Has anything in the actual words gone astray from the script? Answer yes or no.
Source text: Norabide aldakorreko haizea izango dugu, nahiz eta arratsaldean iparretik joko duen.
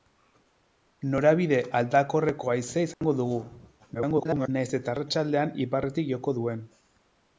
yes